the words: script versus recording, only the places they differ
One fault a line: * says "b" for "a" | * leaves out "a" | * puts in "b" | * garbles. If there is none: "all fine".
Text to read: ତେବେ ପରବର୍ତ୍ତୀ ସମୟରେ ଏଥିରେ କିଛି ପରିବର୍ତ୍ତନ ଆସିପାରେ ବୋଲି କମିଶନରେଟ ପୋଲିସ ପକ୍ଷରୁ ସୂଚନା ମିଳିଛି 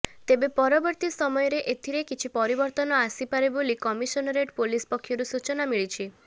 all fine